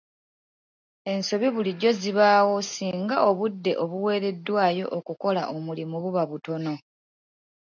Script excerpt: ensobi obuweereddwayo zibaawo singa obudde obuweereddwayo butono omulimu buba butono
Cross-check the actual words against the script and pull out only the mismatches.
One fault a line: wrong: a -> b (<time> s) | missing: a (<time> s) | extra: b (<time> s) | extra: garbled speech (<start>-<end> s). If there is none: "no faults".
wrong: obuweereddwayo -> bulijjo (1.6 s)
wrong: butono -> okukola (5.0 s)